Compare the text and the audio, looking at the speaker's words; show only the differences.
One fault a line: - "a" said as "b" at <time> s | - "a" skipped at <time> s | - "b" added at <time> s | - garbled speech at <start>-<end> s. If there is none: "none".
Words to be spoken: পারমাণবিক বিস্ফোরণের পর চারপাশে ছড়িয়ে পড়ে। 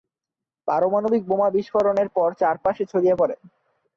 - "বোমা" added at 1.3 s